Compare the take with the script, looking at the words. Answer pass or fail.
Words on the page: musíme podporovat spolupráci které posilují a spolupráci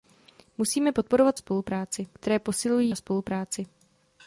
pass